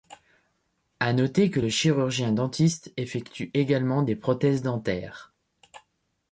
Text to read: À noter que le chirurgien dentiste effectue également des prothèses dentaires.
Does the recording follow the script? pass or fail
pass